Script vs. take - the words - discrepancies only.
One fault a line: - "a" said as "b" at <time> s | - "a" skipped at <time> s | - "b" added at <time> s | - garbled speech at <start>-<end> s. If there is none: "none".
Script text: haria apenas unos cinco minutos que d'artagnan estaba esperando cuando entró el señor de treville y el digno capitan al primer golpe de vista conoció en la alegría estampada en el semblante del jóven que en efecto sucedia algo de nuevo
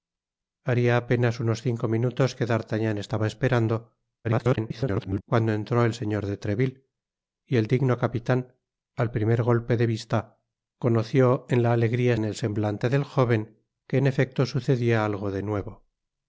- garbled speech at 4.2-5.2 s
- "estampada" skipped at 12.1 s